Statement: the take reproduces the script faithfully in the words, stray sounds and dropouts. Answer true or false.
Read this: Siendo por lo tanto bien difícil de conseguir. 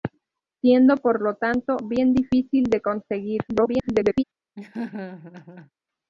false